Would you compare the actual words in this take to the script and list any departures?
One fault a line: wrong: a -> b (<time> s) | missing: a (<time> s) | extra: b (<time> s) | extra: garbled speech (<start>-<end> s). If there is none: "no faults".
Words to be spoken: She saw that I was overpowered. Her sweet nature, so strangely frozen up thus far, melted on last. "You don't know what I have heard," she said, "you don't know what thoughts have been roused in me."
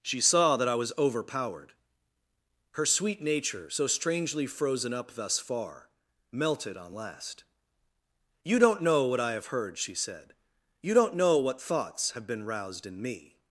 no faults